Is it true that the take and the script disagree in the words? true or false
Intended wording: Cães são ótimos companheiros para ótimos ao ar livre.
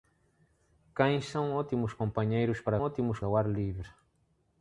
false